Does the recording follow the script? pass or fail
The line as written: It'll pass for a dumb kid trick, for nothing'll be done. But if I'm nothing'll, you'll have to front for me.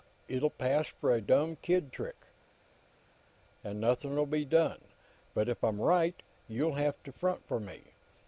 fail